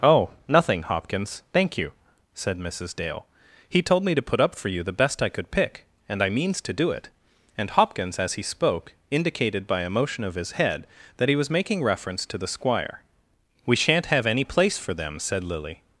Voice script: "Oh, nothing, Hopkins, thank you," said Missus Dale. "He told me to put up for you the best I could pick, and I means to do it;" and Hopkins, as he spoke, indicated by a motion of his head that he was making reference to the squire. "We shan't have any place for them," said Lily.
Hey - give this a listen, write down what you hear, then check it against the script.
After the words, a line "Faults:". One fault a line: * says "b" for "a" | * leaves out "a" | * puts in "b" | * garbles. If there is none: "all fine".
"Oh, nothing, Hopkins, thank you," said Missus Dale. "He told me to put up for you the best I could pick, and I means to do it;" and Hopkins, as he spoke, indicated by a motion of his head that he was making reference to the squire. "We shan't have any place for them," said Lily.
Faults:
all fine